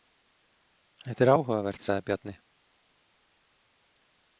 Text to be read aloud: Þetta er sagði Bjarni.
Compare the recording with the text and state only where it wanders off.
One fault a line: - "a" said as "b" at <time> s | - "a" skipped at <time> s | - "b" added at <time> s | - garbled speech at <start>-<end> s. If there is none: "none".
- "áhugavert" added at 1.3 s